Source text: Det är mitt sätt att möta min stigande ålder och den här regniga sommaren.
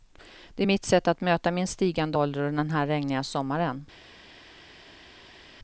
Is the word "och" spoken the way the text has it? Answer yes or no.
yes